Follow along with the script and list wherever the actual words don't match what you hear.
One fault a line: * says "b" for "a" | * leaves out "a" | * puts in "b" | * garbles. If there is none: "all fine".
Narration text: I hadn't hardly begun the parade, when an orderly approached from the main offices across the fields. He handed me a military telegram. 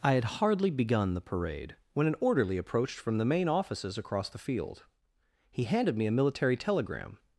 * says "had" for "hadn't"
* says "field" for "fields"